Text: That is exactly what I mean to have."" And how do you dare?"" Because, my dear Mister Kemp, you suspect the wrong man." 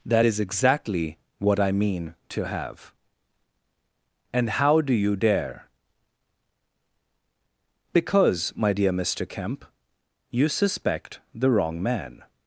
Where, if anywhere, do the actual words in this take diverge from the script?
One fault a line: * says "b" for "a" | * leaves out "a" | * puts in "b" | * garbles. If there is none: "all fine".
all fine